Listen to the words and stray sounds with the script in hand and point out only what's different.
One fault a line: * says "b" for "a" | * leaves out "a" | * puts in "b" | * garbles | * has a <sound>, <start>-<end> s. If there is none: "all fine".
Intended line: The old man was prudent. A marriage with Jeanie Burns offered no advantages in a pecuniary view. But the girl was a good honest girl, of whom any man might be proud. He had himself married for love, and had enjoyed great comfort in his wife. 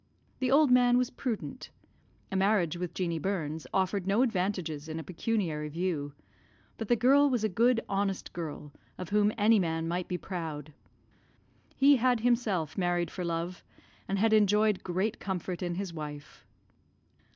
all fine